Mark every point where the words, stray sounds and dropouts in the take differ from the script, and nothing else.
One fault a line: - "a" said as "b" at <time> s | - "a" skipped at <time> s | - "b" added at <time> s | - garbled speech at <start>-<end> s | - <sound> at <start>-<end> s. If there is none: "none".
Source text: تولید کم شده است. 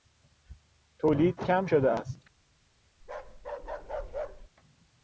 - bark at 3.0-4.5 s